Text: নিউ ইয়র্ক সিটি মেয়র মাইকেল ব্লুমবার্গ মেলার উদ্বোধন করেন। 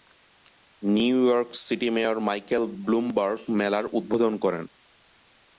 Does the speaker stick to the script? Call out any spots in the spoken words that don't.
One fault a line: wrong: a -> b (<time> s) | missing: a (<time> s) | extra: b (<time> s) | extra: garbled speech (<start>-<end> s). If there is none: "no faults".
no faults